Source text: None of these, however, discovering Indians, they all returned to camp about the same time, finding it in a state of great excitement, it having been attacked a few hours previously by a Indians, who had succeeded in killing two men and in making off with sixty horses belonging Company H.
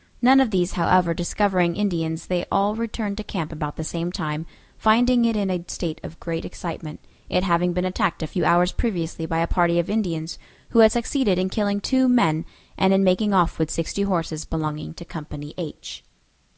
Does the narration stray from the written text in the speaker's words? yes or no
yes